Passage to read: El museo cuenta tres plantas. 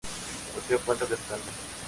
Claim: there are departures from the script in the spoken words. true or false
false